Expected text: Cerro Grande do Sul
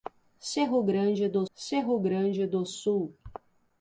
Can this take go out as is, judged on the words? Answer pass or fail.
fail